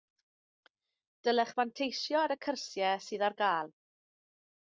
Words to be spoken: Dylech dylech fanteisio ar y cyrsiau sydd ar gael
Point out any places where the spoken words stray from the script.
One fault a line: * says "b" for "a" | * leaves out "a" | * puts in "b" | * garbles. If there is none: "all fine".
* leaves out "dylech"